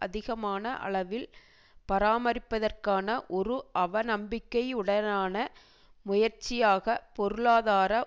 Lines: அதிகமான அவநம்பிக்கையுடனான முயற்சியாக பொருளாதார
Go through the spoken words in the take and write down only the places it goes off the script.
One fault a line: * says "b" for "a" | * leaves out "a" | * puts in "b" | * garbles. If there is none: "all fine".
* puts in "அளவில் பராமரிப்பதற்கான ஒரு"